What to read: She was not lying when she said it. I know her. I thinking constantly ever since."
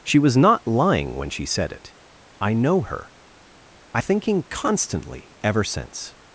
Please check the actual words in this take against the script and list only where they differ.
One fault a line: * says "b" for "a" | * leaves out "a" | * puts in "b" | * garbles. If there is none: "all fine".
all fine